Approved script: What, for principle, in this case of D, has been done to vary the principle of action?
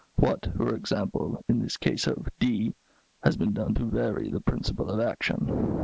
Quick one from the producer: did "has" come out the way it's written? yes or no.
yes